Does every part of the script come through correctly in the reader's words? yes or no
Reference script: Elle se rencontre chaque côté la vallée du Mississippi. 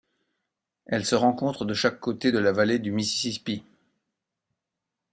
no